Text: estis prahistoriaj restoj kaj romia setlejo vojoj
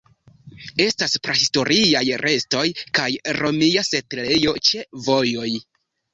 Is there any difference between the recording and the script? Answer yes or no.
yes